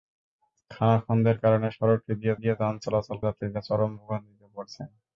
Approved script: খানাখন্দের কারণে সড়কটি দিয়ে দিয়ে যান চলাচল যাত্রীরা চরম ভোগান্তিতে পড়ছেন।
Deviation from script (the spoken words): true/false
false